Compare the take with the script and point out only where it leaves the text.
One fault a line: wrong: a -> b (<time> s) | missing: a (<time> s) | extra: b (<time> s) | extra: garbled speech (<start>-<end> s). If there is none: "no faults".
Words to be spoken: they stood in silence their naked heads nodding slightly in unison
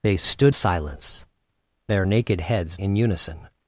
missing: in (0.6 s)
missing: nodding slightly (2.8 s)